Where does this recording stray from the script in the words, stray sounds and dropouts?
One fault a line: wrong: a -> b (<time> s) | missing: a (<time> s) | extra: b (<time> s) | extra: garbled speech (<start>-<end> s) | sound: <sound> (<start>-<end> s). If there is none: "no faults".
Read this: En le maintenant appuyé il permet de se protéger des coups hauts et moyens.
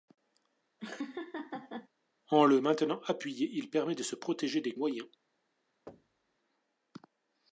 sound: laugh (0.8-1.9 s)
missing: coups hauts et (4.8 s)
sound: thud (5.9-6.4 s)